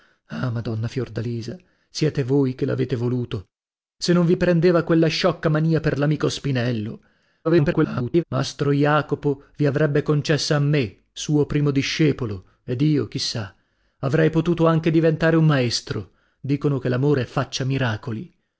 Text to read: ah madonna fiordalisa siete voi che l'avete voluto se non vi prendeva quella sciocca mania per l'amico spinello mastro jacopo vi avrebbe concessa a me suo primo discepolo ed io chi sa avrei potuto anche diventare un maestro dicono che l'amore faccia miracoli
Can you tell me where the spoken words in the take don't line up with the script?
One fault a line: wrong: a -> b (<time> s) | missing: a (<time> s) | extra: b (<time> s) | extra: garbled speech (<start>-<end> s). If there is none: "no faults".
extra: garbled speech (7.4-8.2 s)